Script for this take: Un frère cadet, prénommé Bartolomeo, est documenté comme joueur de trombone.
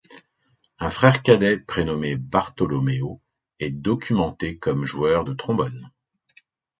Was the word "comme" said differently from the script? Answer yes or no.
no